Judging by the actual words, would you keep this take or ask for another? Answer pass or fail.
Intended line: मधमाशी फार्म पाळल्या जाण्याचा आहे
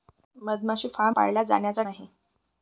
pass